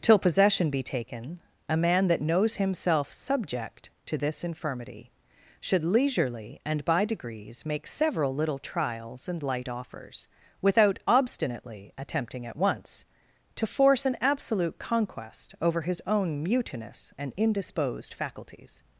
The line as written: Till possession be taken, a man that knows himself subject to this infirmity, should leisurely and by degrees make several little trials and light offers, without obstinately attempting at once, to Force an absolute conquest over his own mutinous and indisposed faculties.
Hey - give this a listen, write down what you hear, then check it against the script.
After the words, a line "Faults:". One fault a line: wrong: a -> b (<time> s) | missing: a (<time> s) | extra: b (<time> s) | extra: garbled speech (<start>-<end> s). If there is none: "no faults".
Till possession be taken, a man that knows himself subject to this infirmity, should leisurely and by degrees make several little trials and light offers, without obstinately attempting at once, to Force an absolute conquest over his own mutinous and indisposed faculties.
Faults:
no faults